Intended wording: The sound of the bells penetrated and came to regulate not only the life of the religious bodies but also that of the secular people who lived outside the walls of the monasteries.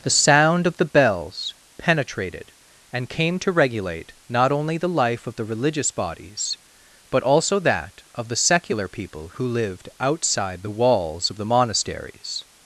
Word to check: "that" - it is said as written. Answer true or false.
true